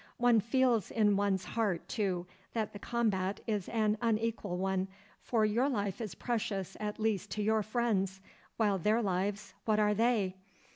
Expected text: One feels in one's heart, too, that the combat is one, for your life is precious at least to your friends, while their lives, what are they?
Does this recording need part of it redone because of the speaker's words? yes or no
yes